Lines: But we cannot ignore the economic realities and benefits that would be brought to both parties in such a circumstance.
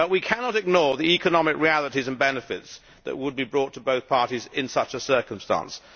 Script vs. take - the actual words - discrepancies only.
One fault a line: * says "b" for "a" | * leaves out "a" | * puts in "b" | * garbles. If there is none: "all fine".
all fine